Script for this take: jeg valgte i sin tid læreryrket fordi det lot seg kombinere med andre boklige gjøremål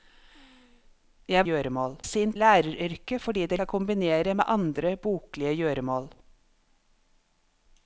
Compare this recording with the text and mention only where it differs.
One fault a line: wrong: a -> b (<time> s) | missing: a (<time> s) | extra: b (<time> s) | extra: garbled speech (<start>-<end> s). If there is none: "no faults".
wrong: valgte -> gjøremål (1.5 s)
missing: tid (2.3 s)
missing: lot (3.6 s)